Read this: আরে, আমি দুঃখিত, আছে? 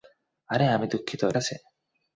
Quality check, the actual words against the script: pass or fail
pass